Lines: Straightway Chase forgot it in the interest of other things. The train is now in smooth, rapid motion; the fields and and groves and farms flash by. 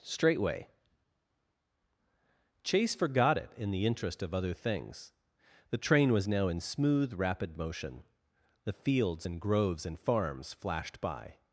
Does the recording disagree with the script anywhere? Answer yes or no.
yes